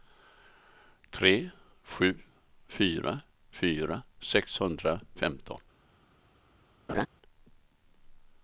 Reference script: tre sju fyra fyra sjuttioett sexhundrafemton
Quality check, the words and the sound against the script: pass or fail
fail